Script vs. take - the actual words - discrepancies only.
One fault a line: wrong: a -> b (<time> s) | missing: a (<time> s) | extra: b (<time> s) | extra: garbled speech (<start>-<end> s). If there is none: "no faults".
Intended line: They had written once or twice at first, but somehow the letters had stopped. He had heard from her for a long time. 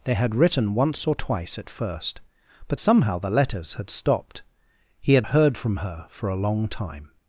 no faults